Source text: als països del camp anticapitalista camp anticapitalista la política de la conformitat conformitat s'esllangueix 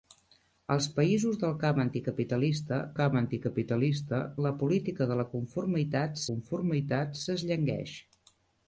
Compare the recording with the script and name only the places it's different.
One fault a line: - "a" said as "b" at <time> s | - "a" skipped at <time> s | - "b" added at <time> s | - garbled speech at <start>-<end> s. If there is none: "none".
none